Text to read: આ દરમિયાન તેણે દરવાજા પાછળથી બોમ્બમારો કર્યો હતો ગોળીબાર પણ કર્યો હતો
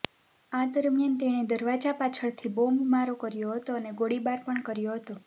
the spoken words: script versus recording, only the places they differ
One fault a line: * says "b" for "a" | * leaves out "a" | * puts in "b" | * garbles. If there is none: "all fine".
* puts in "અને"